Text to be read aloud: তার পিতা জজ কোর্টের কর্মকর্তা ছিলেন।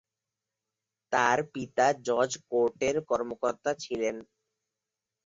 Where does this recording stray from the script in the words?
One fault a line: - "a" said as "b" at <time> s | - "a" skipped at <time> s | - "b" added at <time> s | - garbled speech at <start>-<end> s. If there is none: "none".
none